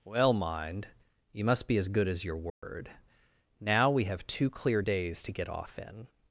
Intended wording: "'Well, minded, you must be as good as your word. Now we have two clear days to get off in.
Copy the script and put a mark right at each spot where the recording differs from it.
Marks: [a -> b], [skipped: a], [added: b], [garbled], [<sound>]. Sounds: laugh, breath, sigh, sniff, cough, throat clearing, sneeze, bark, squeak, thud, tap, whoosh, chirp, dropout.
"'Well, [minded, -> mind] you must be as good as your word. [dropout] Now we have two clear days to get off in.